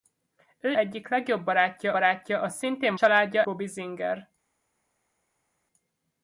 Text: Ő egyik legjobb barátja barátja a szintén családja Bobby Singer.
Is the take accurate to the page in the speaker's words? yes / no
yes